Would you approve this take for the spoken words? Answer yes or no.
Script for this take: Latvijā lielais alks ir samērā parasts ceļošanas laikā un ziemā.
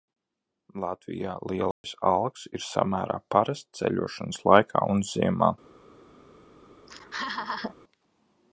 yes